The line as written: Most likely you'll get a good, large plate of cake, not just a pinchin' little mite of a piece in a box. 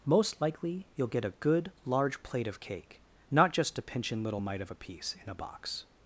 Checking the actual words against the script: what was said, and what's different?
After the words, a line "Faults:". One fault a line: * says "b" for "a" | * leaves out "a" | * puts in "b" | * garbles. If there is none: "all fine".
Most likely you'll get a good, large plate of cake, not just a pinchin' little mite of a piece in a box.
Faults:
all fine